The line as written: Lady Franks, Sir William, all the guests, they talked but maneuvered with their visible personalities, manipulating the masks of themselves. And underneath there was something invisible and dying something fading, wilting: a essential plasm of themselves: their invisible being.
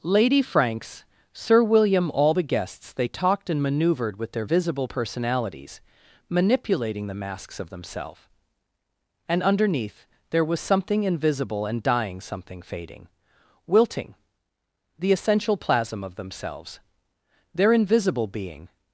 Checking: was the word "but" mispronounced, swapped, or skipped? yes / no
yes